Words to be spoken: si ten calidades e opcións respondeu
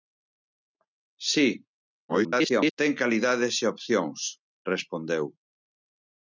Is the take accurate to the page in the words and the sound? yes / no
no